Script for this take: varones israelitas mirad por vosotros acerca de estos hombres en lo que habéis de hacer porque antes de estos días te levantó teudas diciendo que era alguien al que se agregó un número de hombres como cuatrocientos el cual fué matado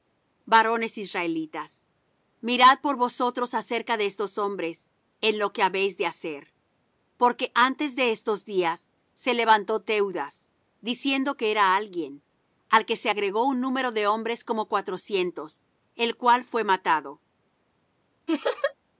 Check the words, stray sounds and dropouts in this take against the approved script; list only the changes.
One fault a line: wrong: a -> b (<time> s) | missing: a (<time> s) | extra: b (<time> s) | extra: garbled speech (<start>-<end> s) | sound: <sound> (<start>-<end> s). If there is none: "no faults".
wrong: te -> se (9.1 s)
sound: laugh (18.3-18.7 s)